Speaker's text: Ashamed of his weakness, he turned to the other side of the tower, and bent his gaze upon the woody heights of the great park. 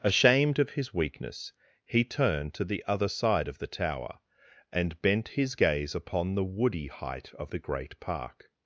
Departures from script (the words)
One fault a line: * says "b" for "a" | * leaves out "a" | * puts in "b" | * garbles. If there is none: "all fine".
* says "height" for "heights"